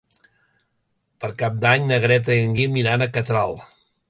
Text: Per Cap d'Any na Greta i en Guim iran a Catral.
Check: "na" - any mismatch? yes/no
no